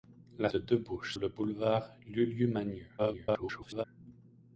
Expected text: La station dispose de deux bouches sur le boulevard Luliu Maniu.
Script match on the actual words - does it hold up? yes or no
no